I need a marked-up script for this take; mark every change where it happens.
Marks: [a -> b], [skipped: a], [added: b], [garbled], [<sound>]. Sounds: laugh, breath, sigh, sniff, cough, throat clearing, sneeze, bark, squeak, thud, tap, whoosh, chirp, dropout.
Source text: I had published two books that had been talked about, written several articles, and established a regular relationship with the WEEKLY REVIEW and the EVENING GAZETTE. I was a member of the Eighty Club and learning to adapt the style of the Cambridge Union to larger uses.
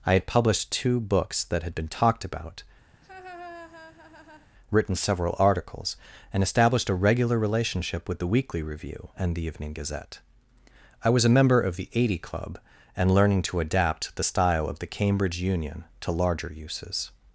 I had published two books that had been talked about, [laugh] written several articles, and established a regular relationship with the WEEKLY REVIEW and the EVENING GAZETTE. I was a member of the Eighty Club and learning to adapt the style of the Cambridge Union to larger uses.